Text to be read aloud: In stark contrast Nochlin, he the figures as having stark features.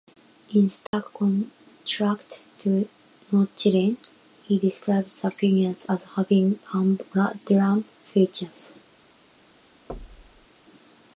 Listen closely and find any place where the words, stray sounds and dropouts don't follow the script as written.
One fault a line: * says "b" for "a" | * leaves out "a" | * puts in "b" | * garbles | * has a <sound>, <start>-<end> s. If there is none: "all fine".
* has a dropout, 0.9-0.9 s
* puts in "to"
* puts in "describes"
* says "humdrum" for "stark"
* has a thud, 9.9-10.5 s